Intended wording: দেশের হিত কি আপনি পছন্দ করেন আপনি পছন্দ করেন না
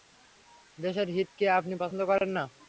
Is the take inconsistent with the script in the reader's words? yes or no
yes